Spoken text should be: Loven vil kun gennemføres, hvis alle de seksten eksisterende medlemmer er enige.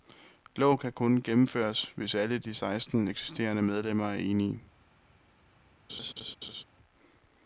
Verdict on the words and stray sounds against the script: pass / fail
fail